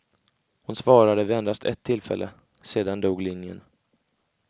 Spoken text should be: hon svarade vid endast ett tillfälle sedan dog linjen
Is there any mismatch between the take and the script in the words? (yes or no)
no